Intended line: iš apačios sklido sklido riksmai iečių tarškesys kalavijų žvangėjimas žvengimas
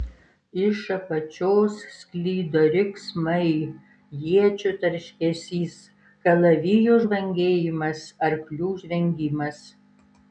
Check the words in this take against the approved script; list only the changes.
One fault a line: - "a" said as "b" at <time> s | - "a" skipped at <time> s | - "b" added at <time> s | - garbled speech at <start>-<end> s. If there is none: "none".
- "sklido" skipped at 2.6 s
- "arklių" added at 8.3 s